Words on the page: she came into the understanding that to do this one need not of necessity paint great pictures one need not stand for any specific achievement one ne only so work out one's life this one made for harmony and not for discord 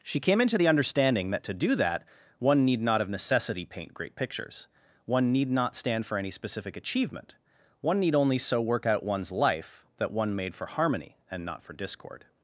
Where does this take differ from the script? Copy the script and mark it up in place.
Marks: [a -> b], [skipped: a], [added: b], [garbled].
she came into the understanding that to do [this -> that] one need not of necessity paint great pictures one need not stand for any specific achievement one [ne -> need] only so work out one's life [this -> that] one made for harmony and not for discord